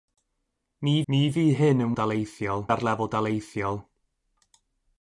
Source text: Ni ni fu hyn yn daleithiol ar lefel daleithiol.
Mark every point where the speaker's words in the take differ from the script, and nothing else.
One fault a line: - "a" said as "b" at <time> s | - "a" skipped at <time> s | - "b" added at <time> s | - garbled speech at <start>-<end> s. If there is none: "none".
none